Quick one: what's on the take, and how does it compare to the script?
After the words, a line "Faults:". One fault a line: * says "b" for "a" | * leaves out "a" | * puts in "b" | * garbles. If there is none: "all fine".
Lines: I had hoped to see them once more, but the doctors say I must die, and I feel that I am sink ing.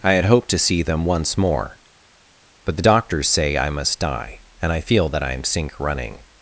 I had hoped to see them once more, but the doctors say I must die, and I feel that I am sink running.
Faults:
* says "running" for "ing"